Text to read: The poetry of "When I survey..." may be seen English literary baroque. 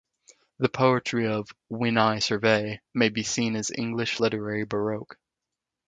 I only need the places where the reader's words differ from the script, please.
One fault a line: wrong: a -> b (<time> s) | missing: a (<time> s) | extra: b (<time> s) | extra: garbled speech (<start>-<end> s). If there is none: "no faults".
extra: as (3.6 s)